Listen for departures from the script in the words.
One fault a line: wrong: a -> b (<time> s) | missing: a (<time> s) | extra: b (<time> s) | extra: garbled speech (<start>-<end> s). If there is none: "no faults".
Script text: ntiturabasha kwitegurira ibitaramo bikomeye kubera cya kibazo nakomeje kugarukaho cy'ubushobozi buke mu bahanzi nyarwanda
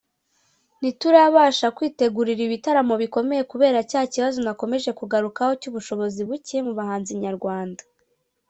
no faults